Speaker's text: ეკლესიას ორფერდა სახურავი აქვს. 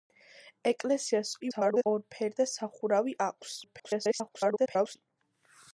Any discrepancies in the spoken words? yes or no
yes